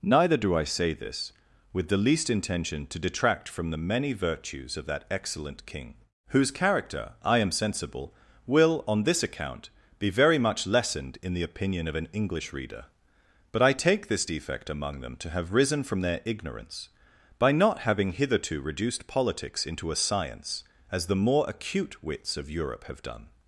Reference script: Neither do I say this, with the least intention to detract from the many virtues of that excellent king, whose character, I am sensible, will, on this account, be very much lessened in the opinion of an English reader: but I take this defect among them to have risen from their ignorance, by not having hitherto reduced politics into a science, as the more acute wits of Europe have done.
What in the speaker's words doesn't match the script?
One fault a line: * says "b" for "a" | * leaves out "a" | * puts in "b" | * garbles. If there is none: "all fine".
all fine